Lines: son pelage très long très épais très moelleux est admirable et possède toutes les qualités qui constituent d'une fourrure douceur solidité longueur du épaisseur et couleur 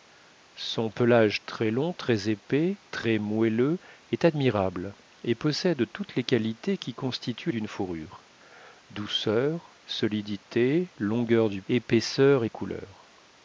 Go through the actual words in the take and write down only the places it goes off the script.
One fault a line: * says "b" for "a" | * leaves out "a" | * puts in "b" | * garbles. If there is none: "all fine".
all fine